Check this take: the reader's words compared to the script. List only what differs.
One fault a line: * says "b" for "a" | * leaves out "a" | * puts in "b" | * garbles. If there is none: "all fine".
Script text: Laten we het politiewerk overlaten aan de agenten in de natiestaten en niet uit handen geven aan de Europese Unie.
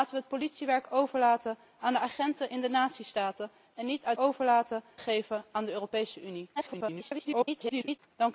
* says "overlaten" for "handen"
* garbles